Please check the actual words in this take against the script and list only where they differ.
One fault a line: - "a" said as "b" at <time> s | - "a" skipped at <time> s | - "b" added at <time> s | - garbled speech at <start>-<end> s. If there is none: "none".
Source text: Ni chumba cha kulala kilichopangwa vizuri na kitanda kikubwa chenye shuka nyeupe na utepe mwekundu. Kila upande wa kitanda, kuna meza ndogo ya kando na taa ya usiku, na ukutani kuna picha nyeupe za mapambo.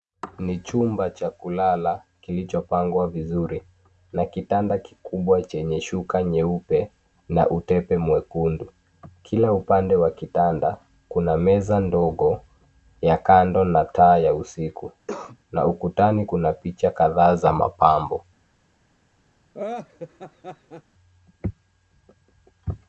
- "nyeupe" said as "kadhaa" at 16.9 s